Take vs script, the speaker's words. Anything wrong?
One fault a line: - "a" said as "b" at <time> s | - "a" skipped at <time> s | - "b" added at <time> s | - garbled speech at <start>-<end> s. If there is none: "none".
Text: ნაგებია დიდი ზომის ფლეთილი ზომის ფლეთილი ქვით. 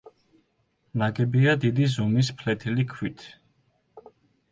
- "ზომის ფლეთილი" skipped at 2.9 s